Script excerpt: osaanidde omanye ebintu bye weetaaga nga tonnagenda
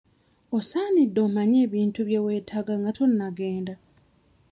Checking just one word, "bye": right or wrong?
right